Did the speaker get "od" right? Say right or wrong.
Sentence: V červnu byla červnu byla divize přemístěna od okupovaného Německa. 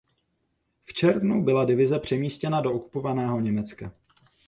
wrong